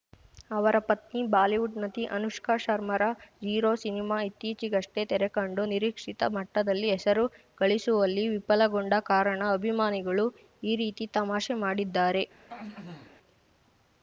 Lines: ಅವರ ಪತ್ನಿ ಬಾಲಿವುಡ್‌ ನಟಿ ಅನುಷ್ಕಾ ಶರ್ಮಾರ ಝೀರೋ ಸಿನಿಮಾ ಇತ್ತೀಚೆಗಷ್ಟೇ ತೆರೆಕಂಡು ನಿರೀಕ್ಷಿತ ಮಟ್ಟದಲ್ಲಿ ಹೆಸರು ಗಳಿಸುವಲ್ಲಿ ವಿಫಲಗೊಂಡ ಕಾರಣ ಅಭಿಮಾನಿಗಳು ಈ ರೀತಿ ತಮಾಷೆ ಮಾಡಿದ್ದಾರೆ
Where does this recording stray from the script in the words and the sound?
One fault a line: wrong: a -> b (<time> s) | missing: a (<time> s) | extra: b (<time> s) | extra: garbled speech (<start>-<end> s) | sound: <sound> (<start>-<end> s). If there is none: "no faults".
sound: throat clearing (12.5-13.2 s)